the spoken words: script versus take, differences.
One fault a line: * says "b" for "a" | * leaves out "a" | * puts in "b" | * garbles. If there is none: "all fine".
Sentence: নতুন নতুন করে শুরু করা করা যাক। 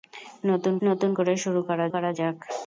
all fine